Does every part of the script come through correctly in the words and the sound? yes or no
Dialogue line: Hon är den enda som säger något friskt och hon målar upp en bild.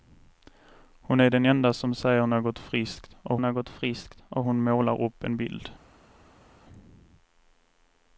no